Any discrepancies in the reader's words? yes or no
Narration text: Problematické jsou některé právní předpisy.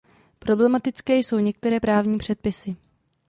no